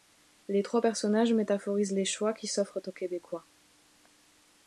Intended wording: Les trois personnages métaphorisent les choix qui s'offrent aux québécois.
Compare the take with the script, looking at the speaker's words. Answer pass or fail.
pass